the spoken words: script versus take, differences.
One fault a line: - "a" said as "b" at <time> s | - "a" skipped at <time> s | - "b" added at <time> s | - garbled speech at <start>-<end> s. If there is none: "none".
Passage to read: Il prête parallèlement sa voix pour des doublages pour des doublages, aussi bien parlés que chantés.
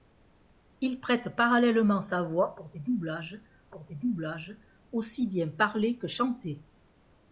none